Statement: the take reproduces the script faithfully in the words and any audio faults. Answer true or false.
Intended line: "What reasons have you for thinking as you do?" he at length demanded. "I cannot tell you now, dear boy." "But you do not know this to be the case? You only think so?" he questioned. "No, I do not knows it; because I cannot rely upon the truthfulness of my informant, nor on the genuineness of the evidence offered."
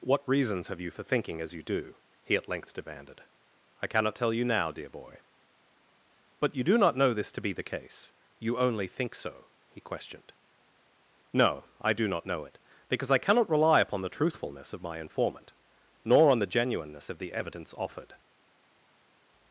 false